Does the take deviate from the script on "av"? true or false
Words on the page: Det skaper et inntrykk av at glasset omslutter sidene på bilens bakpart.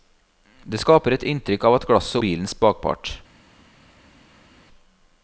false